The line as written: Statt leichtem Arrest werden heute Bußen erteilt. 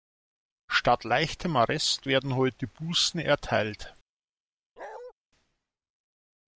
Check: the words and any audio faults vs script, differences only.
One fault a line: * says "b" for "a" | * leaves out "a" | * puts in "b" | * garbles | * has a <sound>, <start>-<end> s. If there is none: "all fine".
* has a bark, 4.8-5.1 s